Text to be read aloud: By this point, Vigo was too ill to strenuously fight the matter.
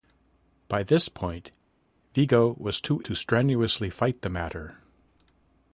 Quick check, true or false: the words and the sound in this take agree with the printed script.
false